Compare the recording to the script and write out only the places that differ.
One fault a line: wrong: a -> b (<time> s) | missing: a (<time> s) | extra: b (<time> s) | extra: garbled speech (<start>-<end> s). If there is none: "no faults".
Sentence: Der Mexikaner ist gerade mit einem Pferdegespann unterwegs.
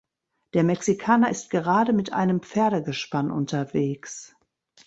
no faults